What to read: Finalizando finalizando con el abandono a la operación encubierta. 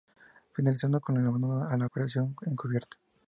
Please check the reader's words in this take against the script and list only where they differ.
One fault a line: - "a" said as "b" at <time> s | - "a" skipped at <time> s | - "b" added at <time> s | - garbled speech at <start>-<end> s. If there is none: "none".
- "finalizando" skipped at 1.0 s